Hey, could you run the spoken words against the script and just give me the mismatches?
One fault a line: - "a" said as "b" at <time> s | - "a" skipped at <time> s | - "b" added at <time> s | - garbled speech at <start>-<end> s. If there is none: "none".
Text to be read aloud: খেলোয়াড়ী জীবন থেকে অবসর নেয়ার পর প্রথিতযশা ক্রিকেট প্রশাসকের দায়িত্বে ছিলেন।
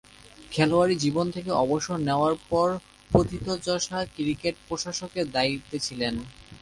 none